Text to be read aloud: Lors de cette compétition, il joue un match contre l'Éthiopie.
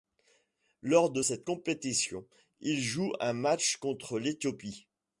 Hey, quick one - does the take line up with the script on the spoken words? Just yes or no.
yes